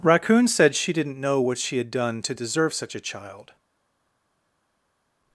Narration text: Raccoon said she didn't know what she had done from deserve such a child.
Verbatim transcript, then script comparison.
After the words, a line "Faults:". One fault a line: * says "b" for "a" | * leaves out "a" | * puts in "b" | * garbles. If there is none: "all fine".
Raccoon said she didn't know what she had done to deserve such a child.
Faults:
* says "to" for "from"